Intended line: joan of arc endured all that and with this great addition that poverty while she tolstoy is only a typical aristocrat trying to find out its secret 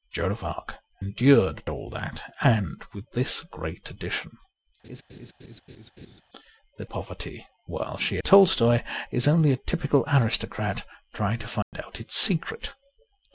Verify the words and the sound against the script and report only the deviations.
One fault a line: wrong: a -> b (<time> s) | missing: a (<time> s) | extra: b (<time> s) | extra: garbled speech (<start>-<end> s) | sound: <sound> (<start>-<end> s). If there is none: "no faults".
sound: laugh (4.8-6.2 s)
sound: dropout (11.6-11.7 s)